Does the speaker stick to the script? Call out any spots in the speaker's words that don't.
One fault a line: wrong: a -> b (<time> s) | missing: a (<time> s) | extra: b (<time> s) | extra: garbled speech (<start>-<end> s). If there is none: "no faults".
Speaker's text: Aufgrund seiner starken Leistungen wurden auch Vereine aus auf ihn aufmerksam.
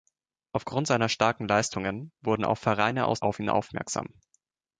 no faults